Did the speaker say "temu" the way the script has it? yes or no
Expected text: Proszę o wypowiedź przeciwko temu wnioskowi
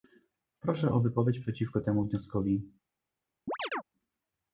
yes